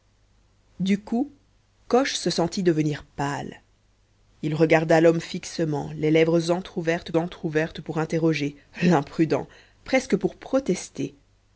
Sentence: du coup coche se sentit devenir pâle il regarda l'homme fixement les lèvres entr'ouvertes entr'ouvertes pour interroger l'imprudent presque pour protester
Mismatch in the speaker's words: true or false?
false